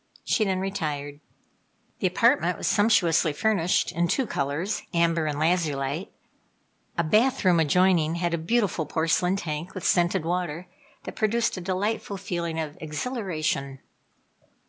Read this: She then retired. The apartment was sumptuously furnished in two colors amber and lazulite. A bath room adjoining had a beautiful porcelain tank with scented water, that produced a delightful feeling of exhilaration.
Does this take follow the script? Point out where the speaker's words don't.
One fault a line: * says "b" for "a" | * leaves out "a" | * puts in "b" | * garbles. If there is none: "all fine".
all fine